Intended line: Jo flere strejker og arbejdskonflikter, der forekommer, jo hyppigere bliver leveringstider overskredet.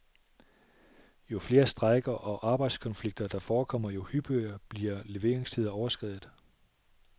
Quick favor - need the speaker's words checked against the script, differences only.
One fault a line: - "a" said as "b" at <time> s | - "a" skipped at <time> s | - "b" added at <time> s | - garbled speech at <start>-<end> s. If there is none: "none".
none